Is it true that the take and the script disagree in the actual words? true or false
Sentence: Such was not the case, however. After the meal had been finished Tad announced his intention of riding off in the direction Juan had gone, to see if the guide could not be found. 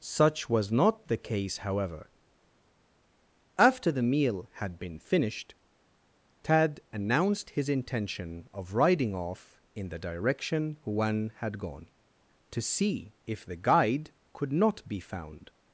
false